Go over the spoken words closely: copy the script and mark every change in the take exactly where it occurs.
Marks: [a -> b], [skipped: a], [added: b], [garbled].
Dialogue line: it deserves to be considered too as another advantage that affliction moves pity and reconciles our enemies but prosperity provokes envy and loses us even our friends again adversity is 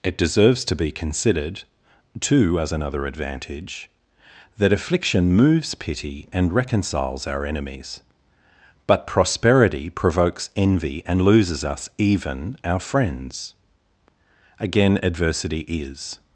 it deserves to be considered too as another advantage that affliction moves pity and reconciles our enemies but prosperity provokes envy and loses us even our friends again adversity is